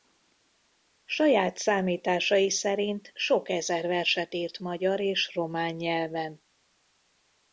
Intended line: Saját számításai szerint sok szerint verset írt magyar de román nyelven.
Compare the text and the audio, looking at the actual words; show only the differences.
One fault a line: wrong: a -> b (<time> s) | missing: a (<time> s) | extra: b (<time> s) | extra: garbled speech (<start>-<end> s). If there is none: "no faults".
wrong: szerint -> ezer (3.5 s)
wrong: de -> és (5.0 s)